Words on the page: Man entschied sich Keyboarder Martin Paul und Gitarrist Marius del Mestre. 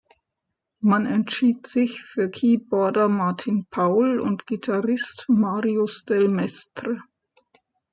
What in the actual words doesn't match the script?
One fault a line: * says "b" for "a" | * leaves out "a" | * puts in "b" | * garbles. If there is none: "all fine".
* puts in "für"